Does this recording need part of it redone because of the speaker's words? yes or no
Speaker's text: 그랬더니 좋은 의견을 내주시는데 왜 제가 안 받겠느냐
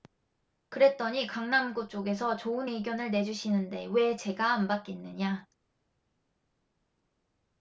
yes